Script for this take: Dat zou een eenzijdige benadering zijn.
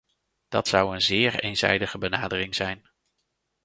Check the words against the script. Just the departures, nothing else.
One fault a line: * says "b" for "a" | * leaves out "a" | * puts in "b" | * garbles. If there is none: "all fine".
* puts in "zeer"